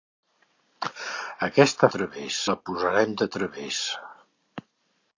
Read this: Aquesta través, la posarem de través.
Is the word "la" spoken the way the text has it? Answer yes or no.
yes